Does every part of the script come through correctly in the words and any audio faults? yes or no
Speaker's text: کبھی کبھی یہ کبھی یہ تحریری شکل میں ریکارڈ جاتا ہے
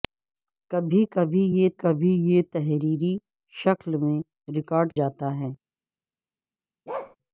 no